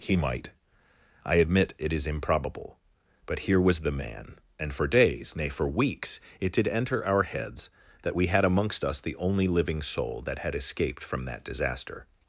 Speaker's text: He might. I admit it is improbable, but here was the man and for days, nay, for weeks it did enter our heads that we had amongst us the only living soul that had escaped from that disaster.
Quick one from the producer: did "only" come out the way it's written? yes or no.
yes